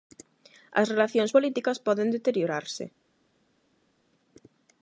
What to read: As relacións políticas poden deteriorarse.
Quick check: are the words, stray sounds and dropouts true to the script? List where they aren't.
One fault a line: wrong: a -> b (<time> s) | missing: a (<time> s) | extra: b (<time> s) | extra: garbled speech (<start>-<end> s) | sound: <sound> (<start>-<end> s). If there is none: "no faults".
no faults